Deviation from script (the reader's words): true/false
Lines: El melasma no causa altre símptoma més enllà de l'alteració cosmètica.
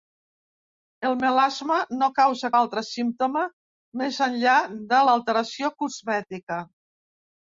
false